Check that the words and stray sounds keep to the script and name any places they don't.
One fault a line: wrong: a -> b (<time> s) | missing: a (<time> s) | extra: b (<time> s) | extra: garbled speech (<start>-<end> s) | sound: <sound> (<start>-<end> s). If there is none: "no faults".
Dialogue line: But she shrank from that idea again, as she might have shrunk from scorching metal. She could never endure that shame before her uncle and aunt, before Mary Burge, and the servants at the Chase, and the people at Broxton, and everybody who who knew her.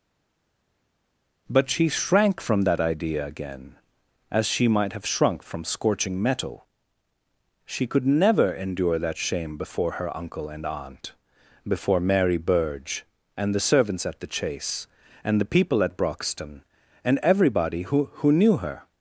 no faults